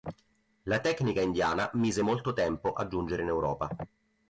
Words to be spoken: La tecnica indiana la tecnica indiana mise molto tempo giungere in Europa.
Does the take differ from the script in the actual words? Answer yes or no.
yes